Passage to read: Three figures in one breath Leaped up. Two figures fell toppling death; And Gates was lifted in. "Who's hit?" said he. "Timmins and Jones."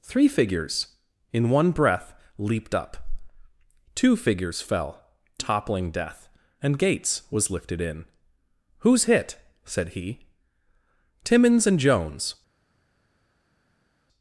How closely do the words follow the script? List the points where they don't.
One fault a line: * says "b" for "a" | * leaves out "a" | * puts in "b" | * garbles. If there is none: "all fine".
all fine